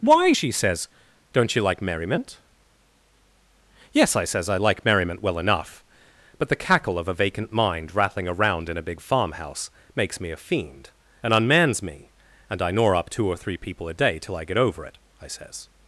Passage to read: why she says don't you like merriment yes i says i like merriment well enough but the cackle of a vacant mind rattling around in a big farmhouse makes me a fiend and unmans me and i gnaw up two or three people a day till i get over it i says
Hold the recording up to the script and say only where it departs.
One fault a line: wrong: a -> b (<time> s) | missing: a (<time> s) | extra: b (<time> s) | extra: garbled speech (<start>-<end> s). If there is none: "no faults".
no faults